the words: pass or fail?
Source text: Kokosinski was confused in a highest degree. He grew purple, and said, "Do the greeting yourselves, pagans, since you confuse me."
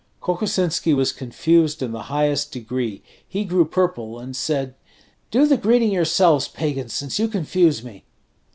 fail